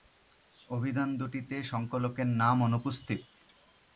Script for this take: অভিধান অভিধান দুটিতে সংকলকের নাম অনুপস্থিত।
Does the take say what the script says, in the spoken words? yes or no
no